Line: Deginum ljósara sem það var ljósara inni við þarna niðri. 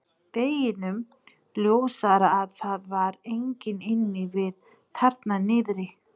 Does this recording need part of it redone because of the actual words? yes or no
yes